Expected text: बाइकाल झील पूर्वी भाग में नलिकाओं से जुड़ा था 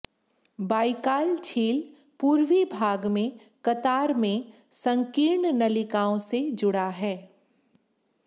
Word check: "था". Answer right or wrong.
wrong